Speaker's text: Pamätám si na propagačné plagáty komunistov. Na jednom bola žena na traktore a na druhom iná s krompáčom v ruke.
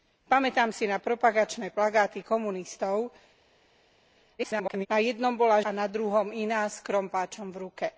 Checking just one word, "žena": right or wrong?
wrong